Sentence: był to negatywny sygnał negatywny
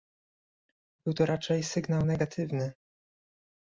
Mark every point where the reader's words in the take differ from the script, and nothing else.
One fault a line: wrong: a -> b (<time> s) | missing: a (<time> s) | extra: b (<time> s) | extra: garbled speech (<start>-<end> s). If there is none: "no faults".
wrong: negatywny -> raczej (1.2 s)